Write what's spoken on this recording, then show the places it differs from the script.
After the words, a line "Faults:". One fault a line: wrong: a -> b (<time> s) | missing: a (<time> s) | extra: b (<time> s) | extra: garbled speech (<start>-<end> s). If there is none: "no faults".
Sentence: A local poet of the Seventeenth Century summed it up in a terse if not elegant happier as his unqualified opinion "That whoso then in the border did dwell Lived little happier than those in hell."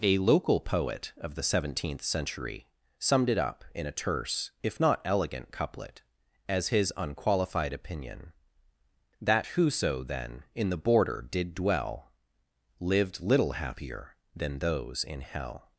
A local poet of the Seventeenth Century summed it up in a terse if not elegant couplet as his unqualified opinion "That whoso then in the border did dwell Lived little happier than those in hell."
Faults:
wrong: happier -> couplet (5.5 s)